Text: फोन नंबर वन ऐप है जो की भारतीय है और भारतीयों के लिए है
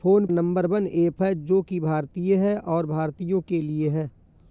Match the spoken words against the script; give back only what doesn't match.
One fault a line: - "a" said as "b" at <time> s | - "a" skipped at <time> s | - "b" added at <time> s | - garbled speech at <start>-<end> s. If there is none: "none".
none